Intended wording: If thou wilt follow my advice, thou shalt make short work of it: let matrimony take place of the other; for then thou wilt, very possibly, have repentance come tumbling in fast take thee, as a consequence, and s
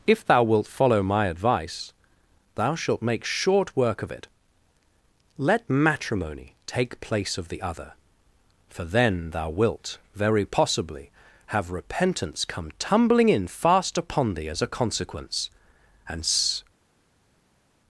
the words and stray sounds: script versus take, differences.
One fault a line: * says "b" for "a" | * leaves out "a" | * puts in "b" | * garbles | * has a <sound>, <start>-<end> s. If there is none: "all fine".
* says "upon" for "take"